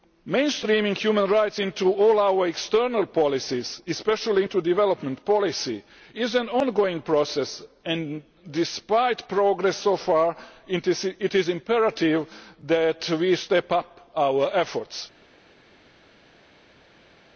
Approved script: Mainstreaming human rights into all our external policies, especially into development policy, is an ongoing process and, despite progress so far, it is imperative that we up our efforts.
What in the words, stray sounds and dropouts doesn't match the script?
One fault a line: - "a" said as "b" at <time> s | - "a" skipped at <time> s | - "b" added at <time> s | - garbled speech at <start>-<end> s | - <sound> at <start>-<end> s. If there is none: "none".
- "step" added at 13.3 s